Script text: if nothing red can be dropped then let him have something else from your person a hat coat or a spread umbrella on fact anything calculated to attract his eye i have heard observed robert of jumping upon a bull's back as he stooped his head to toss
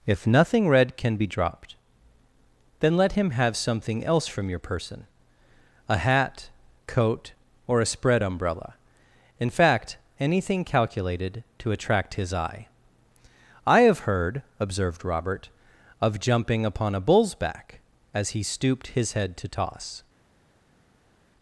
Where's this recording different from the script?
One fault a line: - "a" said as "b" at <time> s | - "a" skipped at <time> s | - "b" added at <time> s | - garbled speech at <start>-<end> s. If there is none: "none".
- "on" said as "in" at 9.4 s